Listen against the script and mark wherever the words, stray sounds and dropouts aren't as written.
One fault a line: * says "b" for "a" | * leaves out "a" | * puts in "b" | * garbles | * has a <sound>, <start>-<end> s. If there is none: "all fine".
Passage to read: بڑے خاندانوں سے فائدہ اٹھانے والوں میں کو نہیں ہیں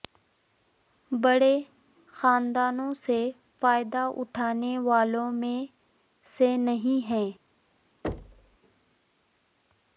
* says "سے" for "کو"
* has a thud, 8.0-8.6 s